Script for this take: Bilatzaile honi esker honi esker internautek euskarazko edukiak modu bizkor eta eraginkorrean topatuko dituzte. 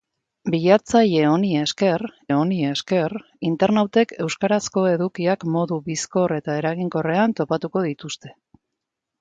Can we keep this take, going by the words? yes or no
yes